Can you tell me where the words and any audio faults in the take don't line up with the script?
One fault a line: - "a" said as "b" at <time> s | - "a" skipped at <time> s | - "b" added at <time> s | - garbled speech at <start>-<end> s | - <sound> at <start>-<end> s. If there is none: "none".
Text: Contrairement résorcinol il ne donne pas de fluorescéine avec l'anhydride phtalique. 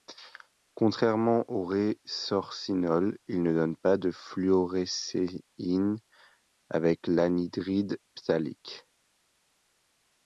- "au" added at 1.5 s